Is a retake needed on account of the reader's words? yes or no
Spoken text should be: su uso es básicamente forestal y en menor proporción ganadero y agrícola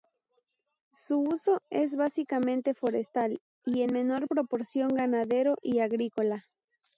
no